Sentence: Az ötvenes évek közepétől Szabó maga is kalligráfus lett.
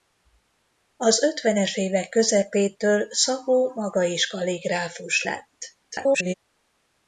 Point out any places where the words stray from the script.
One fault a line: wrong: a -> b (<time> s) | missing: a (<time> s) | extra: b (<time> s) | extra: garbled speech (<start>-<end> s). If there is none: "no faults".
extra: garbled speech (5.8-6.3 s)